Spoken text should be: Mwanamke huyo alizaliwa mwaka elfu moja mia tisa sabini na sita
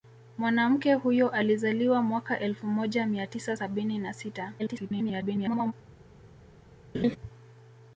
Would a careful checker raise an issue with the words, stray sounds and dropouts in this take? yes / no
yes